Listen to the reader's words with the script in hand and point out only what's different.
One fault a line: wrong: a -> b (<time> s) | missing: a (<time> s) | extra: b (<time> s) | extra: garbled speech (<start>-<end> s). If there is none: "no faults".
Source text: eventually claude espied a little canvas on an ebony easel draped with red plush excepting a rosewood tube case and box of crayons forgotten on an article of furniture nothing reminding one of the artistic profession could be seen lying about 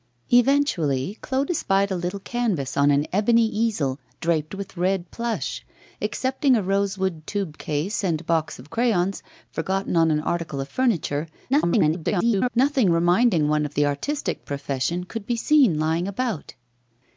extra: garbled speech (11.5-12.5 s)